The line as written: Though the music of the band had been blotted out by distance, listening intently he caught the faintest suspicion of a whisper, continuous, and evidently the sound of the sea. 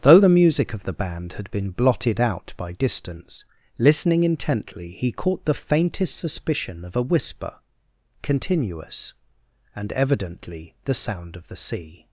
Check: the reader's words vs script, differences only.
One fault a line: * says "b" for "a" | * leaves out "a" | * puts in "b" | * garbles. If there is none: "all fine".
all fine